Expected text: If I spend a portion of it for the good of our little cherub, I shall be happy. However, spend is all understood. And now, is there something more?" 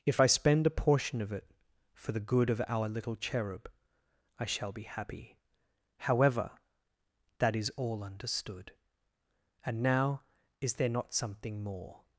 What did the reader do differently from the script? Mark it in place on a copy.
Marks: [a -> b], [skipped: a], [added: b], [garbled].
If I spend a portion of it for the good of our little cherub, I shall be happy. However, [spend -> that] is all understood. And now, is there [added: not] something more?"